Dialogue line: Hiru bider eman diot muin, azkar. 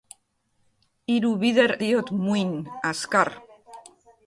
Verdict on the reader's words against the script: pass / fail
fail